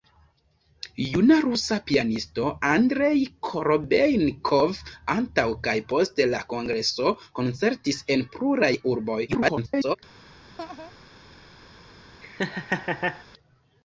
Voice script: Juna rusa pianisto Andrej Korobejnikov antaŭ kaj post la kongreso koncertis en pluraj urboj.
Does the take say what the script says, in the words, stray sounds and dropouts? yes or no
no